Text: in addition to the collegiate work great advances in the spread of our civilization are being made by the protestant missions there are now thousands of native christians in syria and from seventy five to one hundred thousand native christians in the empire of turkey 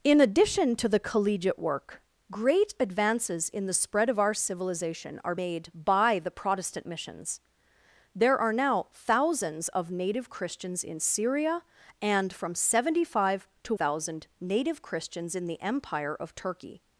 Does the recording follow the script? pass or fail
fail